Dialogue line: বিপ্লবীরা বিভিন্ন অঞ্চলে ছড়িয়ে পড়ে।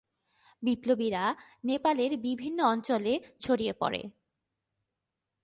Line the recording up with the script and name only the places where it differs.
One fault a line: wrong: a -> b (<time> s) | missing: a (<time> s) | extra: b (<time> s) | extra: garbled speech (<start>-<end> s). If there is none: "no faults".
extra: নেপালের (1.6 s)